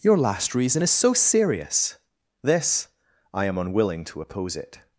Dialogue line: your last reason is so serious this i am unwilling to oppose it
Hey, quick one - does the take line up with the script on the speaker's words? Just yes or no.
yes